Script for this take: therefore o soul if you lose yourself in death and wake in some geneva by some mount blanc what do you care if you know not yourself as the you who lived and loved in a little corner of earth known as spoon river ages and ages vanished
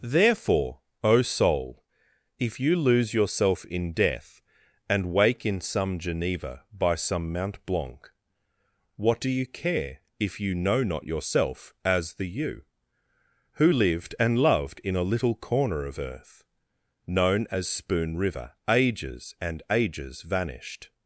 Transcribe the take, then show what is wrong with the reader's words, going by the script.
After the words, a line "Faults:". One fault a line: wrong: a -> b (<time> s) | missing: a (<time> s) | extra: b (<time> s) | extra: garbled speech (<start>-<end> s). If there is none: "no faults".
therefore o soul if you lose yourself in death and wake in some geneva by some mount blanc what do you care if you know not yourself as the you who lived and loved in a little corner of earth known as spoon river ages and ages vanished
Faults:
no faults